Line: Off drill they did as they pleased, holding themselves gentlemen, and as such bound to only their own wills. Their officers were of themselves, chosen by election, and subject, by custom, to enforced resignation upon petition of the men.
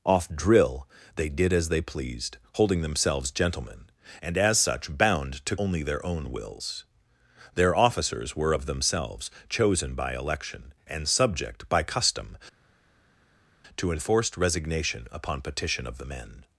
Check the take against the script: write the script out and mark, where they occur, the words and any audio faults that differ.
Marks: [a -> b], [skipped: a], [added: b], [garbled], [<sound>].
Off drill they did as they pleased, holding themselves gentlemen, and as such bound to only their own wills. Their officers were of themselves, chosen by election, and subject, by custom, to enforced resignation upon petition of the men.